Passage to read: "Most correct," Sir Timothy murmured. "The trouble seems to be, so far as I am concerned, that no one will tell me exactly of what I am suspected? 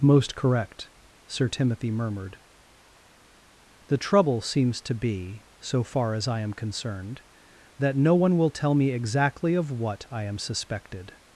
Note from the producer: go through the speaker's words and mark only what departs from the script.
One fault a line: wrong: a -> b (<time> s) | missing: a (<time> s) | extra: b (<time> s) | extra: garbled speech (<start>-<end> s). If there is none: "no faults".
no faults